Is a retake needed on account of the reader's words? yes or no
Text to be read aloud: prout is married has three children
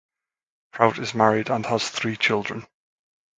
yes